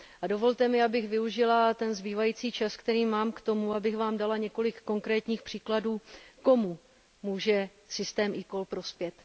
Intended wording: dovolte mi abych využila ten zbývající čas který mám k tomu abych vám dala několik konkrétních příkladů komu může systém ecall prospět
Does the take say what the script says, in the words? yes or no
yes